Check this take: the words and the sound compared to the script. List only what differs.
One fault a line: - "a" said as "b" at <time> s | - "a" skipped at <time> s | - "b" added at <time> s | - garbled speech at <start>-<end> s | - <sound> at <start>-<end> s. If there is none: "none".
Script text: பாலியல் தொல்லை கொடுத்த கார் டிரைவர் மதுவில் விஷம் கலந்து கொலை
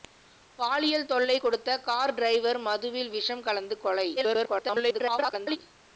- garbled speech at 4.2-5.6 s